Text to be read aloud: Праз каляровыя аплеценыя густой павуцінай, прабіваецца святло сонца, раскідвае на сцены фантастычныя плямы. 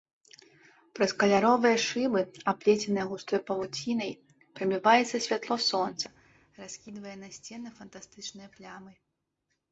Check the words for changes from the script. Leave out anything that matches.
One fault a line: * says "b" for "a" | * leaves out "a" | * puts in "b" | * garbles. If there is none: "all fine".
* puts in "шыбы"